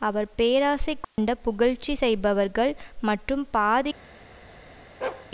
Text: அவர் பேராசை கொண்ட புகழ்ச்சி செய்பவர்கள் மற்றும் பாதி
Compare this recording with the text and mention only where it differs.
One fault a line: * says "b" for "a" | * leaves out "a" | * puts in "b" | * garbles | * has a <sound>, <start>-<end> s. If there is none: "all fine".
* has a dropout, 1.0-1.2 s
* has a bark, 5.0-5.3 s